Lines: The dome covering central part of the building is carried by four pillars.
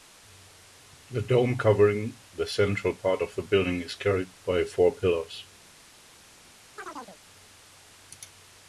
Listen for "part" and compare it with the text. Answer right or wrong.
right